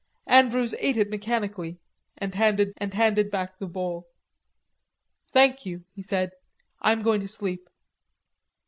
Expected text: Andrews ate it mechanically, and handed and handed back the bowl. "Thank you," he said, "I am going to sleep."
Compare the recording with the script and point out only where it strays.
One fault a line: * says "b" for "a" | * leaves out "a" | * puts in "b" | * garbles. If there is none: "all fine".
all fine